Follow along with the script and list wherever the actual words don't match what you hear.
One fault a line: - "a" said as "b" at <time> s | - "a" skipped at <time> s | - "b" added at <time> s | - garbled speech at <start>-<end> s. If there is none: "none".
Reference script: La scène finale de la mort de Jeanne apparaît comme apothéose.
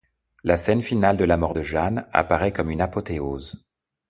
- "une" added at 2.7 s